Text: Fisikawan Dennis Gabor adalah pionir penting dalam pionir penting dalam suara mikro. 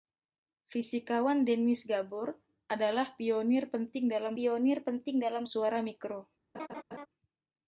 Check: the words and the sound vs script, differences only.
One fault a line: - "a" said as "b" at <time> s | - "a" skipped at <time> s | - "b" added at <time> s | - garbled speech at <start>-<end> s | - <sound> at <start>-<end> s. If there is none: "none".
- laugh at 6.5-7.1 s